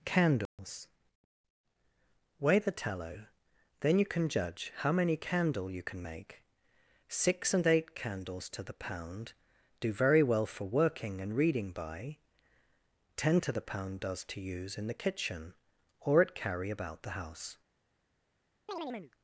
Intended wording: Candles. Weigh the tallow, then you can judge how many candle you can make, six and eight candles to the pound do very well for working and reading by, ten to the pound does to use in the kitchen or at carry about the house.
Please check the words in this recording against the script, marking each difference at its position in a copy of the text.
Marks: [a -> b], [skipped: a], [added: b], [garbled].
Candles. Weigh the tallow, then you can judge how many candle you can make, six and eight candles to the pound do very well for working and reading by, ten to the pound does to use in the kitchen or at carry about the house.